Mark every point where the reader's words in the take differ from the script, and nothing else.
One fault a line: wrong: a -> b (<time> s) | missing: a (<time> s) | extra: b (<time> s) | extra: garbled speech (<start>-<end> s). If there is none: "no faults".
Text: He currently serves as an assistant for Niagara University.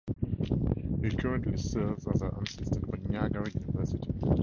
no faults